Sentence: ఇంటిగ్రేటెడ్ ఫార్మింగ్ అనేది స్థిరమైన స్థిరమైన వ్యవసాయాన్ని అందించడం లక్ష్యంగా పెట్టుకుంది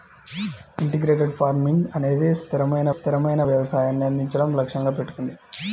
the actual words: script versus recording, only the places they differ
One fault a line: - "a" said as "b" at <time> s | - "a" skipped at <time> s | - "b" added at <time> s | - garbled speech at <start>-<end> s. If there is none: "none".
none